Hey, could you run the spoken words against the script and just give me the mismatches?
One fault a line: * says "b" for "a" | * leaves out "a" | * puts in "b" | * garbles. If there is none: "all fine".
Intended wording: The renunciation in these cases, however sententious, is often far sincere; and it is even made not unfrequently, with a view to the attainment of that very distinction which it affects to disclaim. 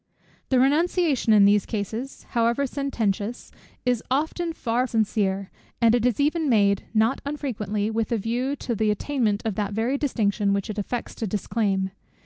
all fine